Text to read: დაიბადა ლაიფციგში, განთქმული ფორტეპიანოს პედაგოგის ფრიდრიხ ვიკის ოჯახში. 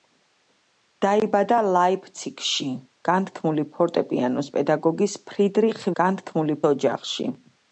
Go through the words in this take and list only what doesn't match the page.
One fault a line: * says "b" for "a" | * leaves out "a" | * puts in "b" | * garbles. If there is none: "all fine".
* says "განთქმული" for "ვიკის"